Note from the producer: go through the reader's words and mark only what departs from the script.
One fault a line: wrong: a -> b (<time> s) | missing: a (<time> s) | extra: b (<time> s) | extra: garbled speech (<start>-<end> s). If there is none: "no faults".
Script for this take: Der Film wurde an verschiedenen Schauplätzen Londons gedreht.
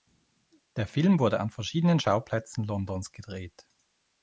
no faults